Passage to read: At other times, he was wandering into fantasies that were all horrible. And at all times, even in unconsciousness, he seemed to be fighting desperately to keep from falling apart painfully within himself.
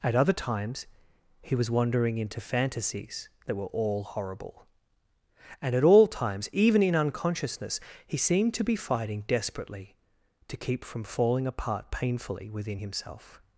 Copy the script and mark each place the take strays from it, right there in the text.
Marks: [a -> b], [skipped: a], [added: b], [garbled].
At other times, he was wandering into fantasies that were all horrible. And at all times, even in unconsciousness, he seemed to be fighting desperately to keep from falling apart painfully within himself.